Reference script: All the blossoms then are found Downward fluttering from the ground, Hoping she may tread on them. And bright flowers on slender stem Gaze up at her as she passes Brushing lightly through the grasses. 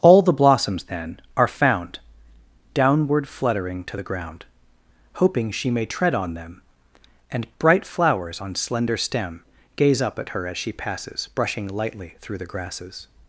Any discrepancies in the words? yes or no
yes